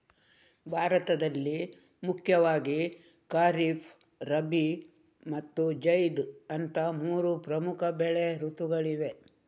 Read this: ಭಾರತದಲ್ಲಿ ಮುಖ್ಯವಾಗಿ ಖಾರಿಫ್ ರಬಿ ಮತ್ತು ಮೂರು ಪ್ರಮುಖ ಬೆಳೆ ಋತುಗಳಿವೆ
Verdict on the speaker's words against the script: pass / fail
fail